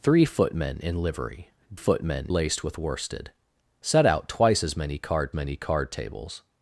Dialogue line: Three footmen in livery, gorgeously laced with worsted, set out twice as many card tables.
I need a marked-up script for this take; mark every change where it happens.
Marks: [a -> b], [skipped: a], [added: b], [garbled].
Three footmen in livery, [gorgeously -> footmen] laced with worsted, set out twice as many card [added: many card] tables.